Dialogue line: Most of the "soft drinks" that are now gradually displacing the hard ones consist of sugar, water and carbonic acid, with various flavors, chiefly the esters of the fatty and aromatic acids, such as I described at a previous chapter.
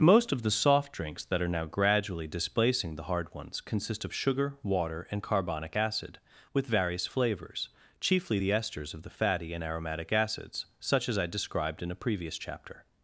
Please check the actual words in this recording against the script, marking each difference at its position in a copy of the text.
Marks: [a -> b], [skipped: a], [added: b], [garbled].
Most of the "soft drinks" that are now gradually displacing the hard ones consist of sugar, water and carbonic acid, with various flavors, chiefly the esters of the fatty and aromatic acids, such as I described [at -> in] a previous chapter.